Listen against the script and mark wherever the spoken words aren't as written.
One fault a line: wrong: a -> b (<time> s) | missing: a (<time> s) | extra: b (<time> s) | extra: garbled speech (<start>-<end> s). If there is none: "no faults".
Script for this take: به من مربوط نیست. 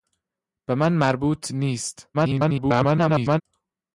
extra: garbled speech (2.1-3.4 s)